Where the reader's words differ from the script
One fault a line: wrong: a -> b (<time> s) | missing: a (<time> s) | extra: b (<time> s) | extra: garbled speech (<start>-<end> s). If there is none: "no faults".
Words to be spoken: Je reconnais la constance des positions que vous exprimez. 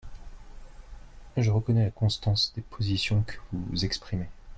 no faults